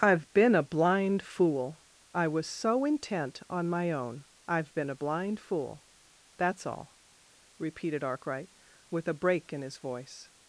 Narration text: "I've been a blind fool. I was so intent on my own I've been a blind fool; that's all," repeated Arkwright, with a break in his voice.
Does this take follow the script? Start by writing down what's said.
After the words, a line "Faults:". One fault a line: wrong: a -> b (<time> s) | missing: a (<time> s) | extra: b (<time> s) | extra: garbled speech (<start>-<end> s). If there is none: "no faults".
"I've been a blind fool. I was so intent on my own I've been a blind fool; that's all," repeated Arkwright, with a break in his voice.
Faults:
no faults